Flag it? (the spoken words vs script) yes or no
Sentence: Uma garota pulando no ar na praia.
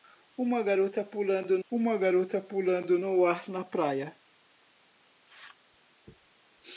yes